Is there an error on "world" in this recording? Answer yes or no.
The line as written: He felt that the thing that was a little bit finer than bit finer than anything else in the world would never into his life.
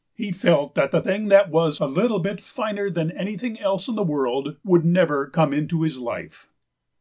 no